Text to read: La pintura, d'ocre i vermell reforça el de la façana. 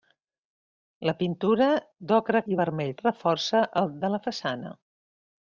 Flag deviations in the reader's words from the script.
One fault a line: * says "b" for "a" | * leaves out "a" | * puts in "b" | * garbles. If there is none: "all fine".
all fine